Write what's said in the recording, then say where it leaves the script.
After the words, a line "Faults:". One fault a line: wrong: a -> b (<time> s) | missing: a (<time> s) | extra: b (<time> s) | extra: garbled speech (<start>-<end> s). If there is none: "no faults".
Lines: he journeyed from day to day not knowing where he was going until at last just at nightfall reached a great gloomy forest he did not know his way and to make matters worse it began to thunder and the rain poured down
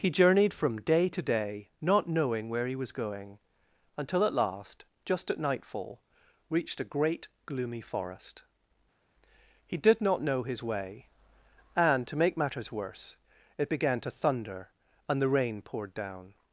he journeyed from day to day not knowing where he was going until at last just at nightfall reached a great gloomy forest he did not know his way and to make matters worse it began to thunder and the rain poured down
Faults:
no faults